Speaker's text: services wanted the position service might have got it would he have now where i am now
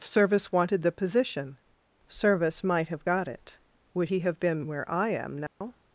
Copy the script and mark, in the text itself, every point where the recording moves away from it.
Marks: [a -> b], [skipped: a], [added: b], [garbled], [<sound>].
[services -> service] wanted the position service might have got it would he have [now -> been] where i am now [dropout]